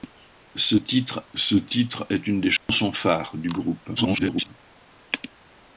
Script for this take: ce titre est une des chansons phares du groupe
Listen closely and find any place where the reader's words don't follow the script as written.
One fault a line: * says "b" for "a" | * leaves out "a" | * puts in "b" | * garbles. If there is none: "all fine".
* puts in "ce titre"
* garbles